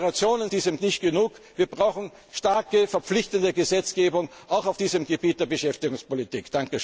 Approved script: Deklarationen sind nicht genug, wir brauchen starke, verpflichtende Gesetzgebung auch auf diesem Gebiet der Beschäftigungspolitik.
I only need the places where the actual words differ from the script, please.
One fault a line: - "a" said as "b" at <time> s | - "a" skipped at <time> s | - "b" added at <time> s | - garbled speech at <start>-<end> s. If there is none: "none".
- "sind" said as "diesem" at 0.5 s